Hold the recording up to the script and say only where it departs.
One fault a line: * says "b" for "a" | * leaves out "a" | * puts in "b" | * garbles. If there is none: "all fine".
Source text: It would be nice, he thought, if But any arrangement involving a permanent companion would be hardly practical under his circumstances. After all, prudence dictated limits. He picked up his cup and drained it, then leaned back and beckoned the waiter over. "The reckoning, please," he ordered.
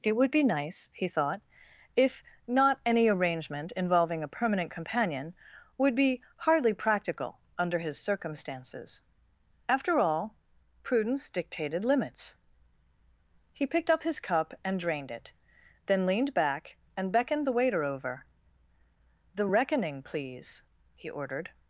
* says "Not" for "But"